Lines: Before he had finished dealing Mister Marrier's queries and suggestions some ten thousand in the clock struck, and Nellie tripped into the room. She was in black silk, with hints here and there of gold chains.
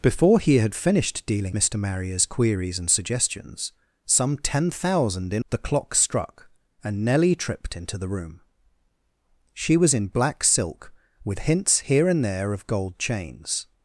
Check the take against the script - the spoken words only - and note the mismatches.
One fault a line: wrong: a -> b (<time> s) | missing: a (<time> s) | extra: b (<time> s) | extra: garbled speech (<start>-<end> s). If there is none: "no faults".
no faults